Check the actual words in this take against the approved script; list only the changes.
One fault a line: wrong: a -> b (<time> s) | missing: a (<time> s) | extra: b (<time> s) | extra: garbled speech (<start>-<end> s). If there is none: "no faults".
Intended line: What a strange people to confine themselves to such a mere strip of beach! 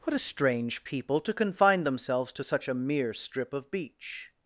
no faults